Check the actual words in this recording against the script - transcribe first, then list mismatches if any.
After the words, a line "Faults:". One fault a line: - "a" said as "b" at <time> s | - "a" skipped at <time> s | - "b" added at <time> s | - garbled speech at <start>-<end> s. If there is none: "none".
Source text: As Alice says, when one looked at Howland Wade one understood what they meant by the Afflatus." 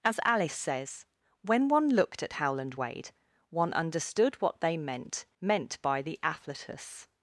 As Alice says, when one looked at Howland Wade one understood what they meant meant by the Afflatus."
Faults:
- "meant" added at 5.4 s